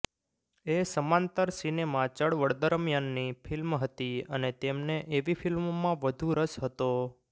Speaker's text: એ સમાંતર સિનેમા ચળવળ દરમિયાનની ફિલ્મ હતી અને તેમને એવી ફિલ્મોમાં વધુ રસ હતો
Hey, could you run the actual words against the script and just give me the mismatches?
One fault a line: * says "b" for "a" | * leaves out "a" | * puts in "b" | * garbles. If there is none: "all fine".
all fine